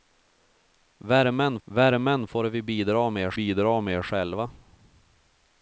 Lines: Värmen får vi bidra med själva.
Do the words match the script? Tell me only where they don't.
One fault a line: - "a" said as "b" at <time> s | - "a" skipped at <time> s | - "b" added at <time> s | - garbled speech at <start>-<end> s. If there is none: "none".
- "värmen" added at 1.6 s
- "bidra med" added at 3.3 s